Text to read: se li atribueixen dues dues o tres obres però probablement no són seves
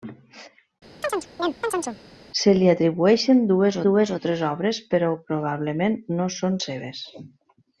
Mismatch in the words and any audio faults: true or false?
true